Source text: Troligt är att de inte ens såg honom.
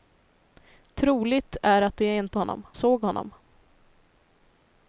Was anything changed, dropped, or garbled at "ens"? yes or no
yes